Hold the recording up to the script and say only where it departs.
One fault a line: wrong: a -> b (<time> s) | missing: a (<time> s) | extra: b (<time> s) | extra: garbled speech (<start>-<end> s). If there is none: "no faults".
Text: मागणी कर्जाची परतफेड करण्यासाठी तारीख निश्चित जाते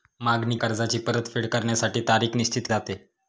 no faults